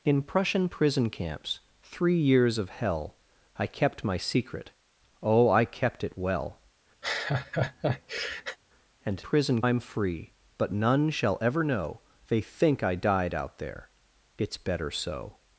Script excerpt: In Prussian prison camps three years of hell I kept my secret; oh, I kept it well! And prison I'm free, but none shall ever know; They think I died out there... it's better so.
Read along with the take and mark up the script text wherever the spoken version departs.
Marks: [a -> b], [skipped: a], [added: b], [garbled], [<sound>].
In Prussian prison camps three years of hell I kept my secret; oh, I kept it well! [laugh] And prison I'm free, but none shall ever know; They think I died out there... it's better so.